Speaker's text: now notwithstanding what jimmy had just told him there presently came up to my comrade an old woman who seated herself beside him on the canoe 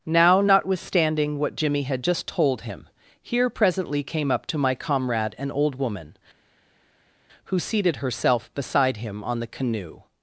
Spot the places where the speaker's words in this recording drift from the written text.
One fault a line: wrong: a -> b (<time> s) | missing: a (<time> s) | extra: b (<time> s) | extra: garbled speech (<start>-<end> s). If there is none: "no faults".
wrong: there -> here (3.2 s)